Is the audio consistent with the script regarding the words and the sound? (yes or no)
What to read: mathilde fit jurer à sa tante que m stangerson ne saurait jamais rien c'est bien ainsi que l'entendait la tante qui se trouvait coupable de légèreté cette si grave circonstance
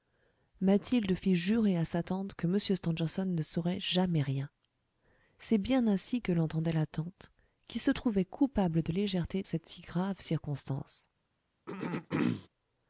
no